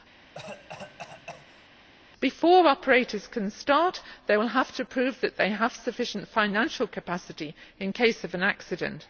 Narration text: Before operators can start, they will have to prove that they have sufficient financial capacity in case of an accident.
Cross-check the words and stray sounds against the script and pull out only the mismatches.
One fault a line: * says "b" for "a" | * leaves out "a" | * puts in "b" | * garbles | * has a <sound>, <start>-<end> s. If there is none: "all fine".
* has a cough, 0.2-1.7 s